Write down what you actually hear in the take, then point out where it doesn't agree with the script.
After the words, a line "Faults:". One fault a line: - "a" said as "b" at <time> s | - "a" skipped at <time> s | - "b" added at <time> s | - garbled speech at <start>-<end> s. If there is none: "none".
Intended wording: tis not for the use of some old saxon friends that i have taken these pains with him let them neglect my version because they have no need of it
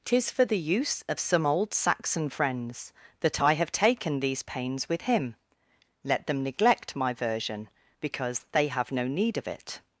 tis for the use of some old saxon friends that i have taken these pains with him let them neglect my version because they have no need of it
Faults:
- "not" skipped at 0.3 s